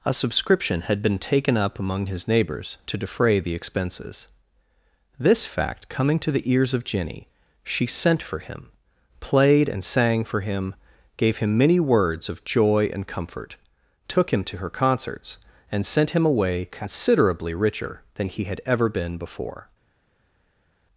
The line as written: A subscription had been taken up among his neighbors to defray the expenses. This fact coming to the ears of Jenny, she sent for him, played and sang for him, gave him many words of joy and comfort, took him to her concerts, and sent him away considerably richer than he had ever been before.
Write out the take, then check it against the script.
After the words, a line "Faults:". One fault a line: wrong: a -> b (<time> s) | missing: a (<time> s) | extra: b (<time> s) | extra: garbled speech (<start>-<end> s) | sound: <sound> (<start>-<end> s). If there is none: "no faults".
A subscription had been taken up among his neighbors to defray the expenses. This fact coming to the ears of Jenny, she sent for him, played and sang for him, gave him many words of joy and comfort, took him to her concerts, and sent him away considerably richer than he had ever been before.
Faults:
no faults